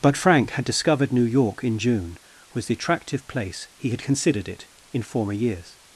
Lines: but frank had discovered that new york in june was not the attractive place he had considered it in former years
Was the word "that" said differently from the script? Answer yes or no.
yes